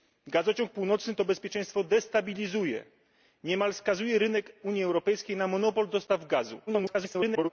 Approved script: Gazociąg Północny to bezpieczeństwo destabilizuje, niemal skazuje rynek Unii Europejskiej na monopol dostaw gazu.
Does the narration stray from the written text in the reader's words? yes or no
yes